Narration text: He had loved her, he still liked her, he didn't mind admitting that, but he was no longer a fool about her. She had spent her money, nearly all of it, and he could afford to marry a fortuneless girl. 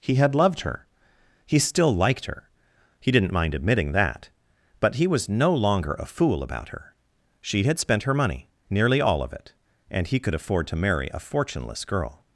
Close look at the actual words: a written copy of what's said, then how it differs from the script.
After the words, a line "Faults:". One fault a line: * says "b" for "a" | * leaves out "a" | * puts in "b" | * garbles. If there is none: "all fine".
He had loved her, he still liked her, he didn't mind admitting that, but he was no longer a fool about her. She had spent her money, nearly all of it, and he could afford to marry a fortuneless girl.
Faults:
all fine